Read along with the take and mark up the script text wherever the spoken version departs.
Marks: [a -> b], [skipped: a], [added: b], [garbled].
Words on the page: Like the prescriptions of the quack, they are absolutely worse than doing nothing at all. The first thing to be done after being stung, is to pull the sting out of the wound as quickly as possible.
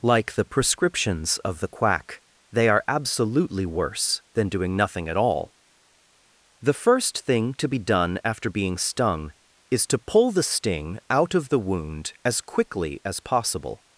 Like the prescriptions of the quack, they are absolutely worse than doing nothing at all. The first thing to be done after being stung, is to pull the sting out of the wound as quickly as possible.